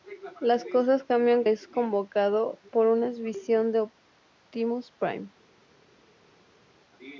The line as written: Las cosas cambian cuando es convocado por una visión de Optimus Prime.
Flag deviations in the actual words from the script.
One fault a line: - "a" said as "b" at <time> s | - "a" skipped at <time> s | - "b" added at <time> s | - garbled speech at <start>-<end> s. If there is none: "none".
- "cuando" skipped at 1.4 s